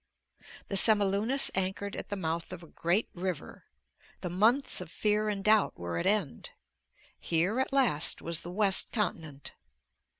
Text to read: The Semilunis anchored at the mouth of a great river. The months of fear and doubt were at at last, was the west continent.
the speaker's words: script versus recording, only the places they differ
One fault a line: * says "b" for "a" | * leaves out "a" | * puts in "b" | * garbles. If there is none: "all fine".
* puts in "end Here"